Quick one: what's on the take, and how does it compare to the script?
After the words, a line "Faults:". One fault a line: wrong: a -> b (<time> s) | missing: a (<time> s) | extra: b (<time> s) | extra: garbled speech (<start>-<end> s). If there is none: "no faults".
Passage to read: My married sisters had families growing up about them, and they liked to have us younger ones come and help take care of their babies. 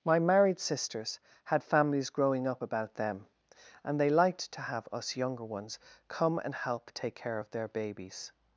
My married sisters had families growing up about them, and they liked to have us younger ones come and help take care of their babies.
Faults:
no faults